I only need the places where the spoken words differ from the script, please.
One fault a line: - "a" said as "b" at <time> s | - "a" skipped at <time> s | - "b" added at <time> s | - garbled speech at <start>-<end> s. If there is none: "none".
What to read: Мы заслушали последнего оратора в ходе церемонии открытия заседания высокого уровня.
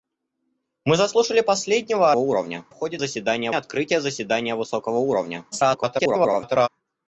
- "оратора" said as "уровня" at 2.2 s
- "церемонии" said as "заседания" at 3.0 s
- garbled speech at 5.5-6.7 s